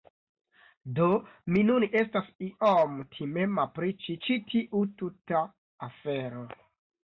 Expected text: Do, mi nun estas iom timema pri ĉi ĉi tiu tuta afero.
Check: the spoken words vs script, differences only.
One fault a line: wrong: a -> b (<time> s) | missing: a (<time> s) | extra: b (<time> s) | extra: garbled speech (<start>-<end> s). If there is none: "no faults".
no faults